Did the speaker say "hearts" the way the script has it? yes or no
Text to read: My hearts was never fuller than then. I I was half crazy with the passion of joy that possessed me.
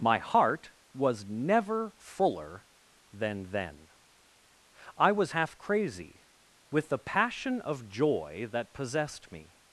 no